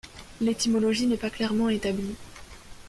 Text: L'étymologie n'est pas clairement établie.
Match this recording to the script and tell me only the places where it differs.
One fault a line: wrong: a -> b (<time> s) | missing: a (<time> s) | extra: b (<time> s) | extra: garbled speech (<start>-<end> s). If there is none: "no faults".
no faults